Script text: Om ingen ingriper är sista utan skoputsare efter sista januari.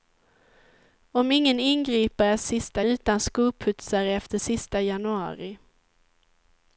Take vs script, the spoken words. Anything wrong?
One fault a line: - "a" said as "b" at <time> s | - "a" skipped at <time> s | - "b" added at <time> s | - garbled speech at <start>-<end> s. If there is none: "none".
none